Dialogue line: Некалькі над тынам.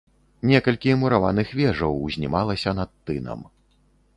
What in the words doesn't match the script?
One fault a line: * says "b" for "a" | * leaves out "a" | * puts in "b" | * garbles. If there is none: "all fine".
* puts in "мураваных вежаў узнімалася"